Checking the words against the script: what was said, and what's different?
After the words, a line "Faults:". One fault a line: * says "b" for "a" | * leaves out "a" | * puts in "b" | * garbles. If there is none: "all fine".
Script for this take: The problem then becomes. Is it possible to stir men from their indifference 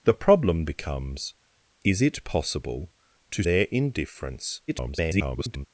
The problem becomes. Is it possible to their indifference [garbled]
Faults:
* leaves out "then"
* leaves out "stir men from"
* garbles